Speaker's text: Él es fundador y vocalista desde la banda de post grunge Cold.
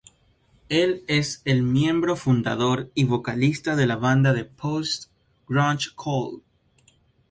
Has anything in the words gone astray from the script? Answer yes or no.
yes